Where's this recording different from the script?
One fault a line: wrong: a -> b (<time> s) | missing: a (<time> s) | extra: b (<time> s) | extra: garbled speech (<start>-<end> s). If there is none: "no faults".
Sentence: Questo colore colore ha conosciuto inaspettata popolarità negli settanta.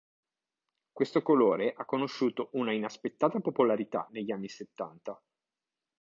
missing: colore (1.7 s)
extra: una (2.5 s)
extra: anni (4.3 s)